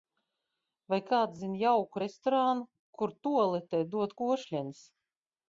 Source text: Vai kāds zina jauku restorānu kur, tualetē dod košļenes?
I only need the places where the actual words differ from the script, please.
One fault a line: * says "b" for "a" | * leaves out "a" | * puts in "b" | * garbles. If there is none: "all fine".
all fine